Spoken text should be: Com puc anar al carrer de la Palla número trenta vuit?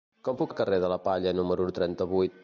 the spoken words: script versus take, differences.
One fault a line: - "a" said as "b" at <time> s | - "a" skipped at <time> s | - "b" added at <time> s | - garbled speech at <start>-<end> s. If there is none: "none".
- "anar" skipped at 0.5 s